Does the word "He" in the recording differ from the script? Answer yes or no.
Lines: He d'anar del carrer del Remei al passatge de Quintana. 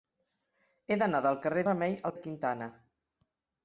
no